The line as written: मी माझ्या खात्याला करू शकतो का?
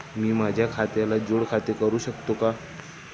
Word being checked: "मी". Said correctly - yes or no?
yes